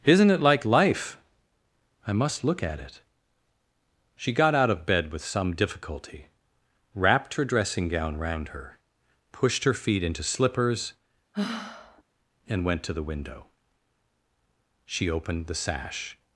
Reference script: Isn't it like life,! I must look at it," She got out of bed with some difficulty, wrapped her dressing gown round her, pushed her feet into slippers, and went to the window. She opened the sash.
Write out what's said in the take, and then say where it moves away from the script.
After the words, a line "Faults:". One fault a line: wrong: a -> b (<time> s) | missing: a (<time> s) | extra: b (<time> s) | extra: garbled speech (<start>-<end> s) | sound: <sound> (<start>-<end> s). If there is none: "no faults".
Isn't it like life,! I must look at it," She got out of bed with some difficulty, wrapped her dressing gown round her, pushed her feet into slippers, and went to the window. She opened the sash.
Faults:
sound: sigh (11.3-12.0 s)